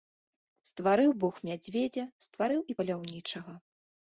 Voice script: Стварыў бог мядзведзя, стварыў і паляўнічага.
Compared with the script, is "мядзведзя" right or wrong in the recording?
right